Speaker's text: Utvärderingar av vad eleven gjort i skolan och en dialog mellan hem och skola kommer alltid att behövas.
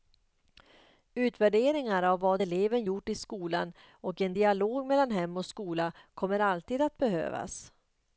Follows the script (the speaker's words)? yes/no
yes